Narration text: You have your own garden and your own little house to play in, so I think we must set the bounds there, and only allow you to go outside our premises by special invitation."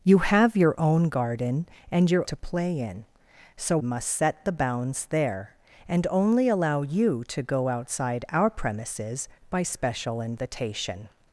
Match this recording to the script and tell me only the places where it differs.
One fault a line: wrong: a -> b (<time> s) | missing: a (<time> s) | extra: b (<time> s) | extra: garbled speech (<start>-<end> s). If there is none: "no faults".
missing: own little house (2.2 s)
missing: I think we (3.8 s)